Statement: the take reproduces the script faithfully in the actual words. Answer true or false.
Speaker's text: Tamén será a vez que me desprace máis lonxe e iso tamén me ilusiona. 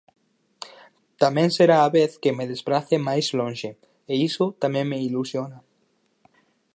true